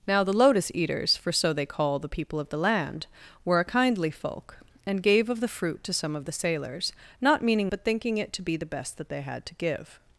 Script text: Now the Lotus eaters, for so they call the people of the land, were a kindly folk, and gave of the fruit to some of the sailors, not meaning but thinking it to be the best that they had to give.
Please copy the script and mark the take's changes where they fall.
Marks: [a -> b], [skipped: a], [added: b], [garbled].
Now the Lotus eaters, for so they call the people of the land, were a kindly folk, and gave of the fruit to some of the sailors, not meaning but thinking it to be the best that they had to give.